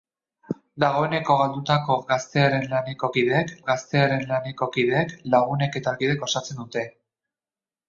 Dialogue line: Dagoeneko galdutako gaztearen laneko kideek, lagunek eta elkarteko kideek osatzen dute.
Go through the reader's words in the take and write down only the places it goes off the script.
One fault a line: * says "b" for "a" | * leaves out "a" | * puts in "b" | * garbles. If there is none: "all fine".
* puts in "gaztearen laneko kideek"
* leaves out "elkarteko"